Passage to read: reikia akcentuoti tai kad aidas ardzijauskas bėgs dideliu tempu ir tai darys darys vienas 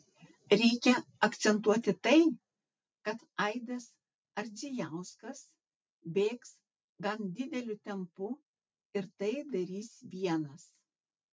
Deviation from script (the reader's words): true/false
true